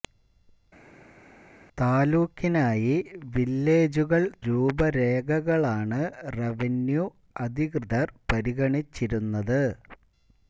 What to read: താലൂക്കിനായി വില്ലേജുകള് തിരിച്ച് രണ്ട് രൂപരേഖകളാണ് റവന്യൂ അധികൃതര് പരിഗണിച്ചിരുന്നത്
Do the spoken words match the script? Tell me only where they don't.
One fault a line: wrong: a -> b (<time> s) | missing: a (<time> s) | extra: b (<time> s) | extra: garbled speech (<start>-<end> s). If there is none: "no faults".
missing: തിരിച്ച് രണ്ട് (4.2 s)